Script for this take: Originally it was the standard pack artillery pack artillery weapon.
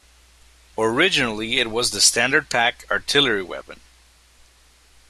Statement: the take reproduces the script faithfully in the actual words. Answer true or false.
false